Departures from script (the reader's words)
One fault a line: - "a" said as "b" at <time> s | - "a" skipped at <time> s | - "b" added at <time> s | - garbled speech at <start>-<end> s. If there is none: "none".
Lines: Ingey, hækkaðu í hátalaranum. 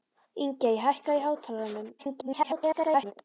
- garbled speech at 2.0-3.1 s